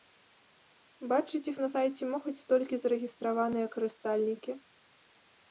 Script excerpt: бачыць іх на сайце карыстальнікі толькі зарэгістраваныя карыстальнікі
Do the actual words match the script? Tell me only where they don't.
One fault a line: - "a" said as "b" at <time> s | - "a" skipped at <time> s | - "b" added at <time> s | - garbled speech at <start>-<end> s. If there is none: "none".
- "карыстальнікі" said as "могуць" at 2.1 s